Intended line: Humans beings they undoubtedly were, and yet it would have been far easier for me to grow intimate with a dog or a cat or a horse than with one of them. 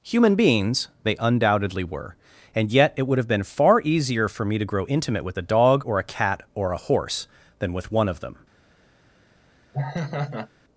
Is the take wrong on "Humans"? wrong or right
wrong